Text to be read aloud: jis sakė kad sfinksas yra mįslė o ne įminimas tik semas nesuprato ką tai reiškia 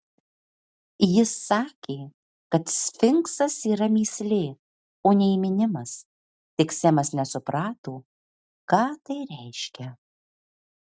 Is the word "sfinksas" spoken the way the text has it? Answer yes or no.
yes